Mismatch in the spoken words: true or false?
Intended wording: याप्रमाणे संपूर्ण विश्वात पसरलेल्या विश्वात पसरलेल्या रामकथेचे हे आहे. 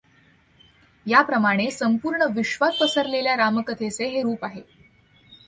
true